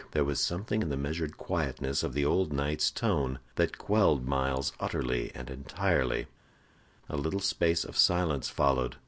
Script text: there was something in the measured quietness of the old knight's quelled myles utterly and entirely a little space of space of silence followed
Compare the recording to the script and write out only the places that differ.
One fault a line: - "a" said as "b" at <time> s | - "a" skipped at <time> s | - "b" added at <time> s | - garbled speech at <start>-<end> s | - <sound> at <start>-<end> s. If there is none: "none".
- "tone that" added at 2.9 s
- "space of" skipped at 8.0 s